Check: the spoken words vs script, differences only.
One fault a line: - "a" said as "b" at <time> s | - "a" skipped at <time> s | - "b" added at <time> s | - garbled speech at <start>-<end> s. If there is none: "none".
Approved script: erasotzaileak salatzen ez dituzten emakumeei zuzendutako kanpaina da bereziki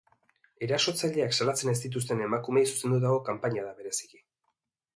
none